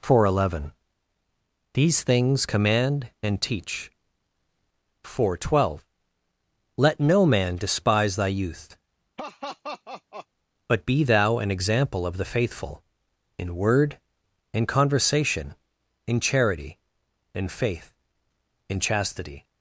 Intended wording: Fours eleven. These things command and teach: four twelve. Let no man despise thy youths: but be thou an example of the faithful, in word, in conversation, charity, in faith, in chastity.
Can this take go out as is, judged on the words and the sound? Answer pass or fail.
fail